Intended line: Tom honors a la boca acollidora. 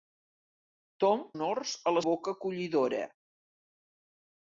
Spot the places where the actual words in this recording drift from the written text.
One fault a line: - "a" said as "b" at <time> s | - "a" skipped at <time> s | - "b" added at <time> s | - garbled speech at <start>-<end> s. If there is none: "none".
none